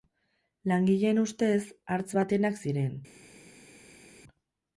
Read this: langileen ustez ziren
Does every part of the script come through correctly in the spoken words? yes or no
no